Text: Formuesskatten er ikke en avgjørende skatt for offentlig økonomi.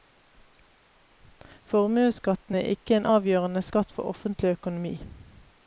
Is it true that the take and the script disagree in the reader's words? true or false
false